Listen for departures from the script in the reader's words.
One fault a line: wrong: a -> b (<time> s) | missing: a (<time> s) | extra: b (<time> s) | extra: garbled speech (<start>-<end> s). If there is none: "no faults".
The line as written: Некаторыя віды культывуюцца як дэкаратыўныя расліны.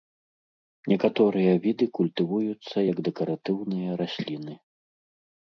no faults